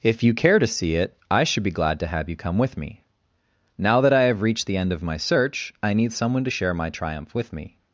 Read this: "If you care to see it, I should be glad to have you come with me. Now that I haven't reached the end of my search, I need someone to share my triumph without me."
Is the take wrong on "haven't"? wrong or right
wrong